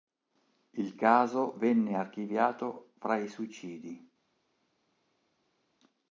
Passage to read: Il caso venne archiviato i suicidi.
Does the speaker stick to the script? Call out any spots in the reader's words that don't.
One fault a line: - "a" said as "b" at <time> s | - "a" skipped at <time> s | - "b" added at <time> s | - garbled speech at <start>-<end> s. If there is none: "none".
- "fra" added at 3.0 s